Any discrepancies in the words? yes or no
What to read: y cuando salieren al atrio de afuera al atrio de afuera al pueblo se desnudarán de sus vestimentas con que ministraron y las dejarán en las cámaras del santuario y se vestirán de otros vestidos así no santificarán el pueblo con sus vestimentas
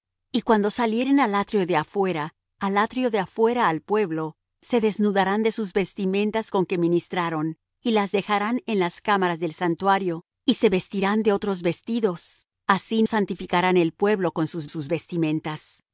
yes